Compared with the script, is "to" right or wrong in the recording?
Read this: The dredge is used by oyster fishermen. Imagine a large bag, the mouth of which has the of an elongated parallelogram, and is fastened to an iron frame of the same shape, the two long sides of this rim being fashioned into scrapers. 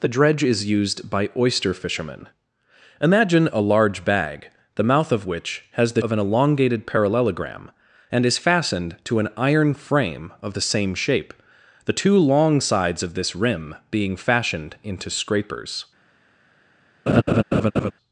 right